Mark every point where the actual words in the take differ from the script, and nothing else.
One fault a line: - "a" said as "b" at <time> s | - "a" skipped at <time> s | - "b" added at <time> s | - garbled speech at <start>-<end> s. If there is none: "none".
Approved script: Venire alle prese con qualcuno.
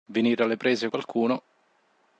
- "con" skipped at 0.9 s